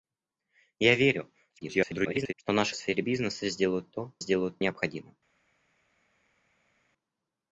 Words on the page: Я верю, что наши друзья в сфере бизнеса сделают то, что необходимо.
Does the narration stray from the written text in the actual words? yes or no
yes